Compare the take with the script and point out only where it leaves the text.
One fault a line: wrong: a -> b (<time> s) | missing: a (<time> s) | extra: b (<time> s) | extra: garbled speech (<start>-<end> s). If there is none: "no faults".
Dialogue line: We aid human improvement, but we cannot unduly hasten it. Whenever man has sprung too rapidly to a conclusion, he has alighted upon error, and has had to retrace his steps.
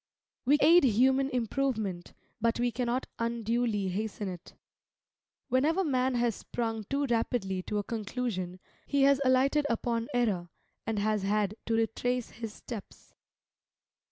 no faults